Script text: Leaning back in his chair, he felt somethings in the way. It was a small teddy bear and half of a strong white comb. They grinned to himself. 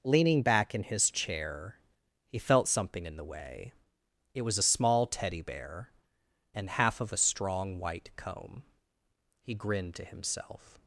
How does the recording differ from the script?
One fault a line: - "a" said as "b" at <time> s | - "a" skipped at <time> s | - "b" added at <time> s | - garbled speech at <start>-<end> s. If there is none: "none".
- "somethings" said as "something" at 2.7 s
- "They" said as "He" at 9.4 s